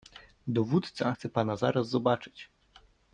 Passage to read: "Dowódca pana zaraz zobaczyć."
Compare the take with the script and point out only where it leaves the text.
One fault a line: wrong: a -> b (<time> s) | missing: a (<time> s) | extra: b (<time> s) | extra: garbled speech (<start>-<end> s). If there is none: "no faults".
extra: chce (1.1 s)